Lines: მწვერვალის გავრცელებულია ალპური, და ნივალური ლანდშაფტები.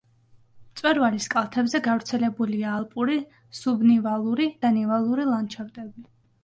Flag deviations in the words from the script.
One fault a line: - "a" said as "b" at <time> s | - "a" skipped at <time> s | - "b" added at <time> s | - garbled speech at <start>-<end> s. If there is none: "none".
- "კალთებზე" added at 1.3 s
- "სუბნივალური" added at 3.6 s